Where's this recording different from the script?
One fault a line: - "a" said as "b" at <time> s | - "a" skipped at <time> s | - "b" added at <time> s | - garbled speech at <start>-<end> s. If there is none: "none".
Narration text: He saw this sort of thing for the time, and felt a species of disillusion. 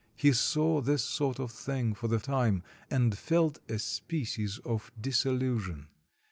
none